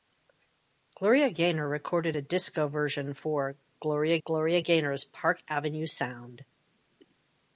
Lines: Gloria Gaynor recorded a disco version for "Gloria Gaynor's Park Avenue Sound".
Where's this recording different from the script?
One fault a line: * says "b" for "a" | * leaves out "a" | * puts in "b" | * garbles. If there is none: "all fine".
* puts in "gloria"